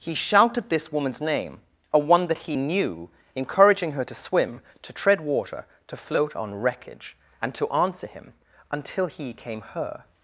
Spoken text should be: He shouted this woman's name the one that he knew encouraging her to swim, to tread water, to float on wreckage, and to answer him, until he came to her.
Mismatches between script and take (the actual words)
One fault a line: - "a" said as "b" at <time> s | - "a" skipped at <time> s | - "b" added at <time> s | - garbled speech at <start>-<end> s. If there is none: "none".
- "the" said as "a" at 1.9 s
- "to" skipped at 9.6 s